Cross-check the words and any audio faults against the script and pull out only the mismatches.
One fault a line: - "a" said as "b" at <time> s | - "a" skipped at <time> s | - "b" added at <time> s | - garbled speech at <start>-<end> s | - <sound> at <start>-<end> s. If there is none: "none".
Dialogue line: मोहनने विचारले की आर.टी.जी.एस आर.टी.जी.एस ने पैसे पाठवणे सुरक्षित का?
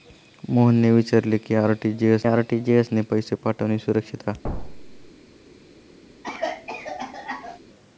- thud at 4.4-5.1 s
- cough at 6.2-7.6 s